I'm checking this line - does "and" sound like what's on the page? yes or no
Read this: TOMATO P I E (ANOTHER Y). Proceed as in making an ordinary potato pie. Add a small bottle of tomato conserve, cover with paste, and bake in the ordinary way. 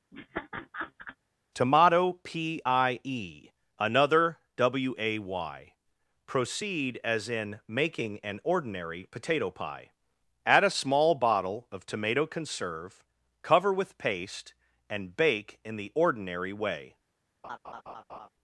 yes